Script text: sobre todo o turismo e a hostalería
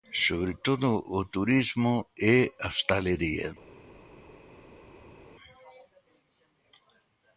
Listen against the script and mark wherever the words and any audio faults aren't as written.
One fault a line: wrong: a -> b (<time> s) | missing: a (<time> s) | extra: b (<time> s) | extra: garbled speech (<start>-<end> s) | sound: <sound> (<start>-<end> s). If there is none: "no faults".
no faults